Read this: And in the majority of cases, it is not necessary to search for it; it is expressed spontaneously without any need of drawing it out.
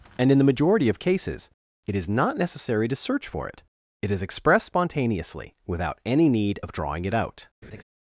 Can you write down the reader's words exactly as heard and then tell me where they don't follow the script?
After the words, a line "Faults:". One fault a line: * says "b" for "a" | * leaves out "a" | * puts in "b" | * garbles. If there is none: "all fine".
And in the majority of cases, it is not necessary to search for it; it is expressed spontaneously without any need of drawing it out.
Faults:
all fine